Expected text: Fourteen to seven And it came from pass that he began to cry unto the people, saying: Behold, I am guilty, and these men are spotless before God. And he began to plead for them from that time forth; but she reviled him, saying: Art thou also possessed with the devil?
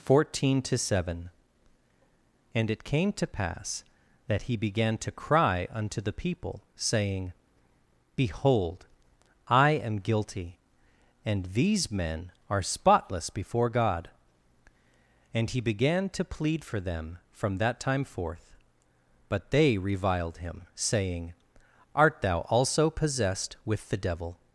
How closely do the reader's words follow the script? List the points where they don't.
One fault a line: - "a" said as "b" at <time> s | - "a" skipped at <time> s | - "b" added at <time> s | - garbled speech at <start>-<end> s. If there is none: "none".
- "from" said as "to" at 3.1 s
- "she" said as "they" at 19.5 s